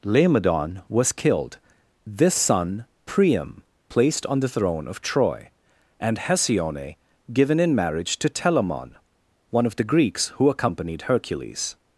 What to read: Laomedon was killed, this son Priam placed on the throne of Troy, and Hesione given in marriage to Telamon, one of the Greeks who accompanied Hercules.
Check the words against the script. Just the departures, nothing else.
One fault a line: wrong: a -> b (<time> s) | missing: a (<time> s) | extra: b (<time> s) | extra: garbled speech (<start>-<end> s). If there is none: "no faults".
no faults